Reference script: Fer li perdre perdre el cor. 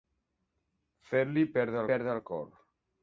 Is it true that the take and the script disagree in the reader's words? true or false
false